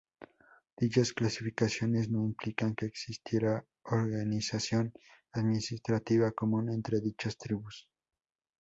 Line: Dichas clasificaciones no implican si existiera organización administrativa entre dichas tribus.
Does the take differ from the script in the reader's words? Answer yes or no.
yes